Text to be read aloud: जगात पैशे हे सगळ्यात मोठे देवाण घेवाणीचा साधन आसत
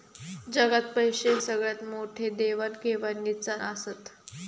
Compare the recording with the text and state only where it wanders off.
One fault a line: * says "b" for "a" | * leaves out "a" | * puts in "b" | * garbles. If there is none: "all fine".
* leaves out "हे"
* leaves out "साधन"